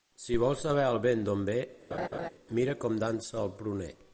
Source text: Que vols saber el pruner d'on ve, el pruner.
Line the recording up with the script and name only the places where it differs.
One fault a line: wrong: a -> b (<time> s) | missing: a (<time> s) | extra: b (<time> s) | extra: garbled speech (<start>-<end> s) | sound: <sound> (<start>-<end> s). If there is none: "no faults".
wrong: Que -> Si (0.2 s)
wrong: pruner -> vent (1.0 s)
sound: laugh (1.9-2.3 s)
extra: mira com dansa (2.6 s)